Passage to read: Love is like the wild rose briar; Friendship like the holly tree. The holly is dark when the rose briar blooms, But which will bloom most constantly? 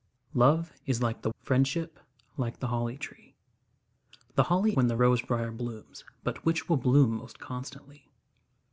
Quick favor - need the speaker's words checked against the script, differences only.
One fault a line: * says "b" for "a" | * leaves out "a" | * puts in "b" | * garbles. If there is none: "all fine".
* leaves out "wild rose briar"
* leaves out "is dark"